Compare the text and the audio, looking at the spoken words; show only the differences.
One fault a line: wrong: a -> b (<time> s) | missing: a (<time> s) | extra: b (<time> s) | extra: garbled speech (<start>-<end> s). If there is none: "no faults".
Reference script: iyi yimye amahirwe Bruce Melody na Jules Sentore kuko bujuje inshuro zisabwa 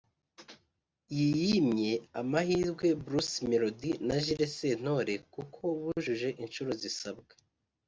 no faults